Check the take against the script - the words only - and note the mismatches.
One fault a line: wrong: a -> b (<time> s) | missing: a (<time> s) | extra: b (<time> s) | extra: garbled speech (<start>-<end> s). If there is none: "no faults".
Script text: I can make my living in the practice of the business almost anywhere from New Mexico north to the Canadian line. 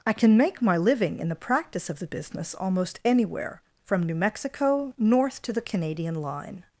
no faults